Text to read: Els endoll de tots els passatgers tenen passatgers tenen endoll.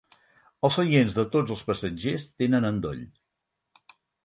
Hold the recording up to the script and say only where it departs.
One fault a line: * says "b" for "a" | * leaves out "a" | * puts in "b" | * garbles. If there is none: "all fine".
* says "seients" for "endoll"
* leaves out "passatgers tenen"